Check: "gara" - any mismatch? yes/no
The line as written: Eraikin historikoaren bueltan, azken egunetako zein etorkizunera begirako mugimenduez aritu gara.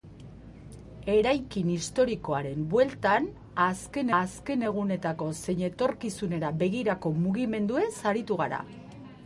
no